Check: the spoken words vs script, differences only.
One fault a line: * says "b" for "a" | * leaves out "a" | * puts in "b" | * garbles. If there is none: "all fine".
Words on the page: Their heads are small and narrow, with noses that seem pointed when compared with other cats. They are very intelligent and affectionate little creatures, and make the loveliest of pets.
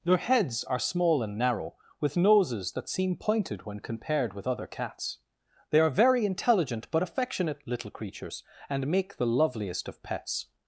* says "but" for "and"